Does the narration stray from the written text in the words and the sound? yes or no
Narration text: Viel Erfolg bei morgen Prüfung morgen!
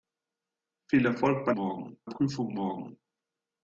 no